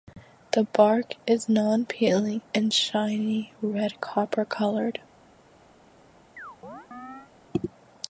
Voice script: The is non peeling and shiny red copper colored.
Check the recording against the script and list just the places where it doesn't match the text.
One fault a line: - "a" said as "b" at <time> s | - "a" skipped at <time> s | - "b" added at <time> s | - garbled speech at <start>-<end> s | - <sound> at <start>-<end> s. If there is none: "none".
- "bark" added at 0.6 s
- chirp at 6.4-7.3 s